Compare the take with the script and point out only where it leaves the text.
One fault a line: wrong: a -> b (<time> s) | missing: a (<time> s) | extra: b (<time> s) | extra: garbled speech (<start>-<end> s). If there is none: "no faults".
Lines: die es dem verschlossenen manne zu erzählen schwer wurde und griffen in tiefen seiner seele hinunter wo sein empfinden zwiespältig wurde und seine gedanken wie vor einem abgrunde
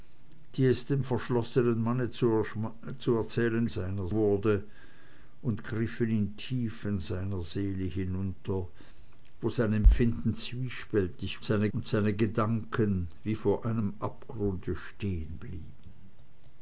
wrong: schwer -> seiner (3.7 s)
wrong: wurde -> seine (11.4 s)